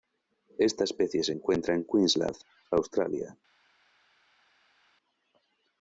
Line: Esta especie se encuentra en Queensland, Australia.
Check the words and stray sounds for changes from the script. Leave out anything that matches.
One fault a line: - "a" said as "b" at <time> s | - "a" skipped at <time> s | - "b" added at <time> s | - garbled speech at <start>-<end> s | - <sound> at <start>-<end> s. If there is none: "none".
none